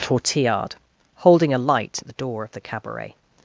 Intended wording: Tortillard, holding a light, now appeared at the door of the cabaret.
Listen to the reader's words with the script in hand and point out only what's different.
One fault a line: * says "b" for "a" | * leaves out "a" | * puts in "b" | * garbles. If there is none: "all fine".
* leaves out "now appeared"